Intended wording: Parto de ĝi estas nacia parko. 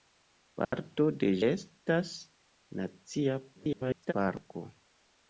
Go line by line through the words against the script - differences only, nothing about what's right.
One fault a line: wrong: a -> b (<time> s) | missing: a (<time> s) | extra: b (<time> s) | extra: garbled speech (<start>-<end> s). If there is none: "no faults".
missing: ĝi (1.3 s)
extra: garbled speech (3.5-4.1 s)